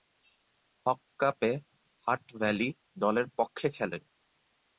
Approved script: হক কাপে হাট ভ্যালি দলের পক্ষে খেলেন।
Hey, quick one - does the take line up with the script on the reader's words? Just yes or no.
yes